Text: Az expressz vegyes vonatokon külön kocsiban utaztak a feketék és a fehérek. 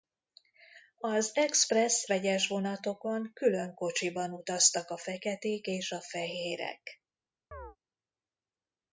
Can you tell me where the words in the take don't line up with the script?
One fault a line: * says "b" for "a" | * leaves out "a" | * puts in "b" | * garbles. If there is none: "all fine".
all fine